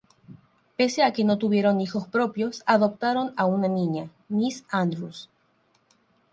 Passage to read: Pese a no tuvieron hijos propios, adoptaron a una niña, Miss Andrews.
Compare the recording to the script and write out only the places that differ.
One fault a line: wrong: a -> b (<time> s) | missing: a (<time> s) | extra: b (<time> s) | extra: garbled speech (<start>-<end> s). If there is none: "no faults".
extra: que (1.1 s)